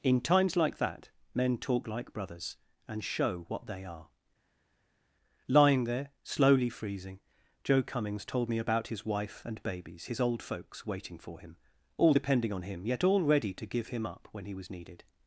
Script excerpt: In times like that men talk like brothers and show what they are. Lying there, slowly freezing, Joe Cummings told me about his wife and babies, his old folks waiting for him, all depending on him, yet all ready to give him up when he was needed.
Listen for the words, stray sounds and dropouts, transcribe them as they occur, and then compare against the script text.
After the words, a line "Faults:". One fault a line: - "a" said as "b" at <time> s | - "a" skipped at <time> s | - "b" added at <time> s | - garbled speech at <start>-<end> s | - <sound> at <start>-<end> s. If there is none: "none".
In times like that men talk like brothers and show what they are. Lying there, slowly freezing, Joe Cummings told me about his wife and babies, his old folks waiting for him, all depending on him, yet all ready to give him up when he was needed.
Faults:
none